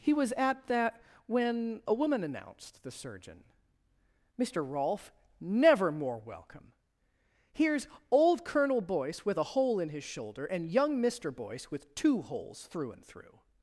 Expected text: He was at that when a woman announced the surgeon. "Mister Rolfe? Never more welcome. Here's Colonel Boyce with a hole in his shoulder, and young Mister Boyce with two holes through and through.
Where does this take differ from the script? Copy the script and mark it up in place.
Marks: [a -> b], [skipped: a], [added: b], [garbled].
He was at that when a woman announced the surgeon. "Mister Rolfe? Never more welcome. Here's [added: old] Colonel Boyce with a hole in his shoulder, and young Mister Boyce with two holes through and through.